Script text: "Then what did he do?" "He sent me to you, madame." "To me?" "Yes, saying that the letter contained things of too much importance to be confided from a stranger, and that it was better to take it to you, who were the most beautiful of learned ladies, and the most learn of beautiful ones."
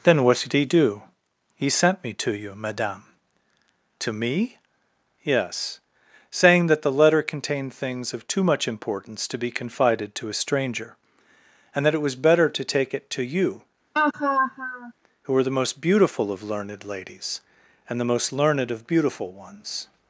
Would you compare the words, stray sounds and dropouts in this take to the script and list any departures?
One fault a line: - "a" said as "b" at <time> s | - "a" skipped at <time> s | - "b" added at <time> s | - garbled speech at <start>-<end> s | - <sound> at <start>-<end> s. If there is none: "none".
- "from" said as "to" at 10.2 s
- laugh at 13.9-14.9 s
- "learn" said as "learned" at 18.3 s